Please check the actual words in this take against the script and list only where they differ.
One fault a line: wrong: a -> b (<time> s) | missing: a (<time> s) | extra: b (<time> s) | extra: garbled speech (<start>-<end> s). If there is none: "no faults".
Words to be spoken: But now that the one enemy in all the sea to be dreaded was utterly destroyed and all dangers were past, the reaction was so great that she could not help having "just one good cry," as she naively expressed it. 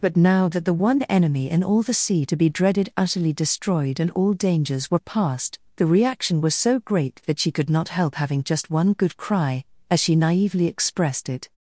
missing: was (2.9 s)